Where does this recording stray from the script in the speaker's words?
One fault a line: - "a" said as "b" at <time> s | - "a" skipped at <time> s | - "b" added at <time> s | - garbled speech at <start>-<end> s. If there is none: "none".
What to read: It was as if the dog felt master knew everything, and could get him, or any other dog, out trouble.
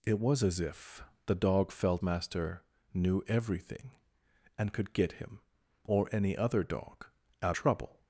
none